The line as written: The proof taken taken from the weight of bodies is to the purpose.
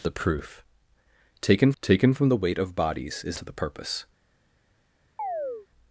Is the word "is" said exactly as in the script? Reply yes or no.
yes